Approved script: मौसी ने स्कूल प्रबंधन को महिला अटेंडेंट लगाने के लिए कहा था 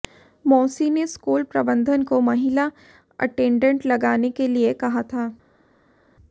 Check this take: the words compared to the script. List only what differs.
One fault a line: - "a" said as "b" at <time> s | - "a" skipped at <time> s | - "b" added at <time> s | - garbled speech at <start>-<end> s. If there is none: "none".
none